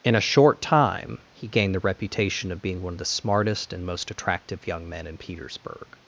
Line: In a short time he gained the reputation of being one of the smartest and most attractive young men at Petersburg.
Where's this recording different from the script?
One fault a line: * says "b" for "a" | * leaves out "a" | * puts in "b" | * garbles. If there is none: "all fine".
* says "in" for "at"